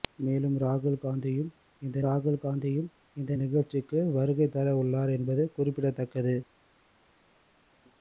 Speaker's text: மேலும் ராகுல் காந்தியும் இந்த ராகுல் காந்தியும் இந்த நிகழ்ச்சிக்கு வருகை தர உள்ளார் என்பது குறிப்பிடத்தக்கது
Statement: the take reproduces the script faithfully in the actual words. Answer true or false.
true